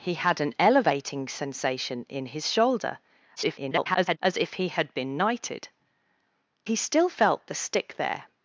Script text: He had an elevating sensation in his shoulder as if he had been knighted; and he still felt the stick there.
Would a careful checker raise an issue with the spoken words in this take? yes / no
yes